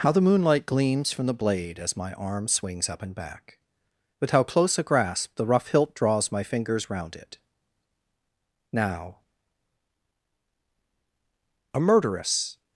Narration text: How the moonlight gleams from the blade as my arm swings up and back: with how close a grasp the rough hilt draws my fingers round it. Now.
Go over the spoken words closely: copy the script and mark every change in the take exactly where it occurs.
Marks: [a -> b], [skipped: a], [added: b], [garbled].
How the moonlight gleams from the blade as my arm swings up and back: with how close a grasp the rough hilt draws my fingers round it. Now. [added: A murderess]